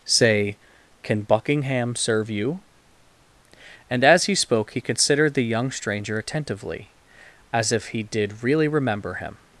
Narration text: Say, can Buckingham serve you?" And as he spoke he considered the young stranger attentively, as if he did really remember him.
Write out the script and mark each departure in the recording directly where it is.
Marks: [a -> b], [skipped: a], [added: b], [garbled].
Say, can Buckingham serve you?" And as he spoke he considered the young stranger attentively, as if he did really remember him.